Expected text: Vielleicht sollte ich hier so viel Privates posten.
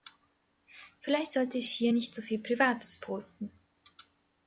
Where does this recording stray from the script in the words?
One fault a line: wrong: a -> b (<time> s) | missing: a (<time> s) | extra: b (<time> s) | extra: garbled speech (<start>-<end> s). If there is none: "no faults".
extra: nicht (1.9 s)